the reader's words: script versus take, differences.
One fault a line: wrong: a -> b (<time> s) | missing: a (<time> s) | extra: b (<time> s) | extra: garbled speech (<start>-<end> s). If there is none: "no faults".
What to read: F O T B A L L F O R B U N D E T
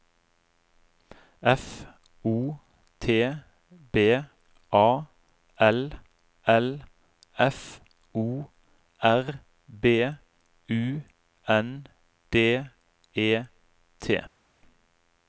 no faults